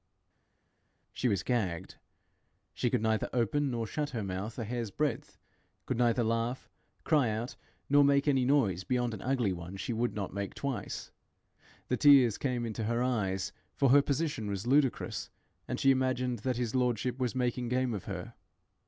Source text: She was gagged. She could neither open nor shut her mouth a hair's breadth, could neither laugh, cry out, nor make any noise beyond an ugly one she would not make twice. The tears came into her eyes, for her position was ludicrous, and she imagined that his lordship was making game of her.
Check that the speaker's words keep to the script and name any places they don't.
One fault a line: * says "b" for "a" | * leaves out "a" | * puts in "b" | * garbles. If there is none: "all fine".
all fine